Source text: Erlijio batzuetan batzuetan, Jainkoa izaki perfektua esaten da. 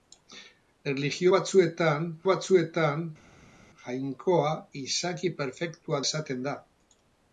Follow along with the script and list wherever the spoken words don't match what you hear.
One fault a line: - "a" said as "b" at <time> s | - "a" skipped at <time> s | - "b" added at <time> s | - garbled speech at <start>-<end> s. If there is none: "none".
none